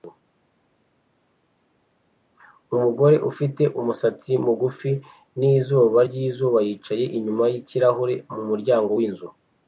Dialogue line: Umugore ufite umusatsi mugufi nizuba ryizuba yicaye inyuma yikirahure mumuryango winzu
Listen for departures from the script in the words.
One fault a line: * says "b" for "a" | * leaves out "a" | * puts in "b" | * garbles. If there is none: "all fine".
all fine